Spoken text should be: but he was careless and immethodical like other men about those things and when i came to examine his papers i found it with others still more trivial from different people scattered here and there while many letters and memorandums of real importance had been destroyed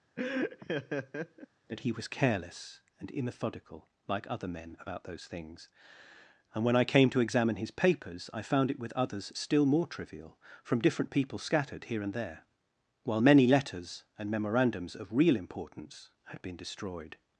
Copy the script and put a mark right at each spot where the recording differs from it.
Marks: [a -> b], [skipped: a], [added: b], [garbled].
[but -> that] he was careless and immethodical like other men about those things and when i came to examine his papers i found it with others still more trivial from different people scattered here and there while many letters and memorandums of real importance had been destroyed